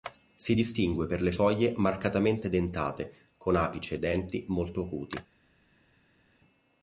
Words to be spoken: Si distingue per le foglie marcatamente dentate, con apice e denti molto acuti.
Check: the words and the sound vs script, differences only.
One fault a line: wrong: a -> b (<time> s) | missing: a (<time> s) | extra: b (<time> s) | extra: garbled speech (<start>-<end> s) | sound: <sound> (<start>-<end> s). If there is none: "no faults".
no faults